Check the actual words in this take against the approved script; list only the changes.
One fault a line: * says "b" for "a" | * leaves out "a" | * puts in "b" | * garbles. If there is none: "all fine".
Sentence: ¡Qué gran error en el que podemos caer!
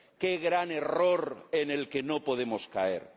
* puts in "no"